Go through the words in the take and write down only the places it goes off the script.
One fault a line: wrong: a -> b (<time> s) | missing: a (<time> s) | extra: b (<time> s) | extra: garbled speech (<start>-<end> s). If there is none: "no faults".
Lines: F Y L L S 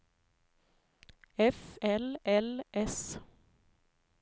missing: Y (1.8 s)